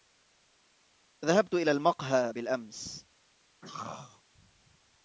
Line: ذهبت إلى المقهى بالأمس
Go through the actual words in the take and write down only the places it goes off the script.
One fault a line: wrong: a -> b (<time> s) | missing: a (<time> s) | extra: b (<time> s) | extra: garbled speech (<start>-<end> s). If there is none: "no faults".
no faults